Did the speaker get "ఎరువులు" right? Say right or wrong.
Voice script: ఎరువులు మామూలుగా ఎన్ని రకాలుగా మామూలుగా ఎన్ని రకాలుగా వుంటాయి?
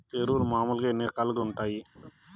right